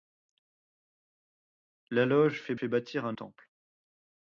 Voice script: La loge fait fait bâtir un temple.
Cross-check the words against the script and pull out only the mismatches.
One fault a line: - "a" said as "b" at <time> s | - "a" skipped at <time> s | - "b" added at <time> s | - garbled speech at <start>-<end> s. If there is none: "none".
none